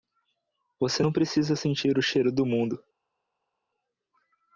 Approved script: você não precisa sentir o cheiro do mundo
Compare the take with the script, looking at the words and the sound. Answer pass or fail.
pass